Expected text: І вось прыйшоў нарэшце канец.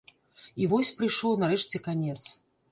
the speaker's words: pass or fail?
pass